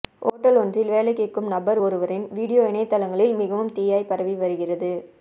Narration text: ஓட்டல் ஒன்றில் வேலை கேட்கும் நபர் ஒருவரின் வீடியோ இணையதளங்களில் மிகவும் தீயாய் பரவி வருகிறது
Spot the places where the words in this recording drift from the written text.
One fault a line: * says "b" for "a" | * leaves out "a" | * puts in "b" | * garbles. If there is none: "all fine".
all fine